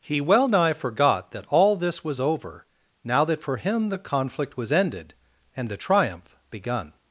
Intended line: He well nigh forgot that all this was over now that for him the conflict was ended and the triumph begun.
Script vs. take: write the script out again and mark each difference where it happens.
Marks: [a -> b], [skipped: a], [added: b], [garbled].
He well nigh forgot that all this was over now that for him the conflict was ended and the triumph begun.